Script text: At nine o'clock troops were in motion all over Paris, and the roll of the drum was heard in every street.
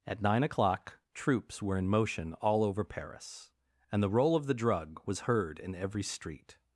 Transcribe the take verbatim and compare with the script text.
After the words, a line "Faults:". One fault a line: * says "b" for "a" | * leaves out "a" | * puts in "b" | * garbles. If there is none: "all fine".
At nine o'clock troops were in motion all over Paris, and the roll of the drug was heard in every street.
Faults:
* says "drug" for "drum"